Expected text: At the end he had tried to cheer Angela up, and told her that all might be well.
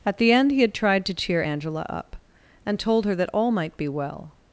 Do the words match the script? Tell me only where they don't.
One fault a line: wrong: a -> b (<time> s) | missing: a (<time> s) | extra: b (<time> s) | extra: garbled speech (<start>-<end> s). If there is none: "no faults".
no faults